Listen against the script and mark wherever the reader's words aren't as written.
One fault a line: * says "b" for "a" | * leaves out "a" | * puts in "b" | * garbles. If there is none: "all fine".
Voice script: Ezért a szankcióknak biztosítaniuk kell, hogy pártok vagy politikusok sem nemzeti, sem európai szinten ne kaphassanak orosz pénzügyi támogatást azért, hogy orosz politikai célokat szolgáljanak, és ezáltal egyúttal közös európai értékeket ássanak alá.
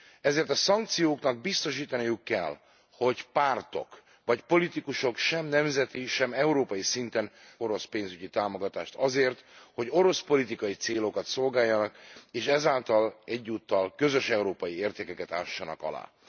* leaves out "ne kaphassanak"